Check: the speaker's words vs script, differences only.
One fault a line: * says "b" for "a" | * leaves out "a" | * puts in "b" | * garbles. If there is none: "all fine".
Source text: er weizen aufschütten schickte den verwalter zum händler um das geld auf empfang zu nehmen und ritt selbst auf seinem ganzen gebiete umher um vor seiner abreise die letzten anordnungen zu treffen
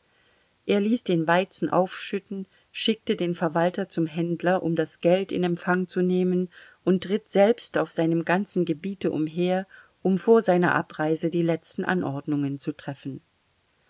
* puts in "ließ den"
* says "in" for "auf"